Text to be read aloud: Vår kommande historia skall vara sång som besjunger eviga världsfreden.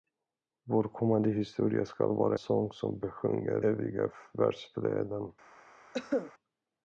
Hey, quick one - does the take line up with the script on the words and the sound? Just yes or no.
no